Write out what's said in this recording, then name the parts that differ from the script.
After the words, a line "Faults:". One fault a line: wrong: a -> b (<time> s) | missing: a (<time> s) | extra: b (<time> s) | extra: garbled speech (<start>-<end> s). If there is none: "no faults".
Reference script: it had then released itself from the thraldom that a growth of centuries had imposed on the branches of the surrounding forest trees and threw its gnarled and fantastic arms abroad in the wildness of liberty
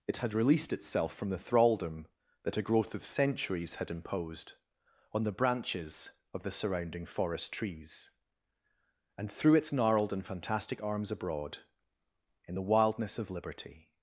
it had released itself from the thraldom that a growth of centuries had imposed on the branches of the surrounding forest trees and threw its gnarled and fantastic arms abroad in the wildness of liberty
Faults:
missing: then (0.3 s)